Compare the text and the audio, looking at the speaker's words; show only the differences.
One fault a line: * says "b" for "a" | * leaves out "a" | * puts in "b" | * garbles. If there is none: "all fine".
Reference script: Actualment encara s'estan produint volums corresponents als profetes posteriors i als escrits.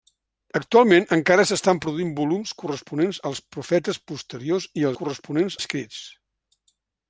* says "corresponents" for "als"